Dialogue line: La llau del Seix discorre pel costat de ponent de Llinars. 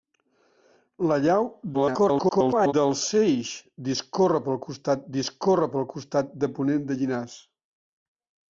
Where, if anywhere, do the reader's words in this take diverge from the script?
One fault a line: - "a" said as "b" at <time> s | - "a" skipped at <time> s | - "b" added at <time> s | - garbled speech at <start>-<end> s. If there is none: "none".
- garbled speech at 1.7-2.7 s
- "discorre pel costat" added at 5.2 s